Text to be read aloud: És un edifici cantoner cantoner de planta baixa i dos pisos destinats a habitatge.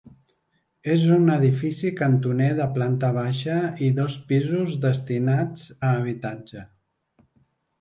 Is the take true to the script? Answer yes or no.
no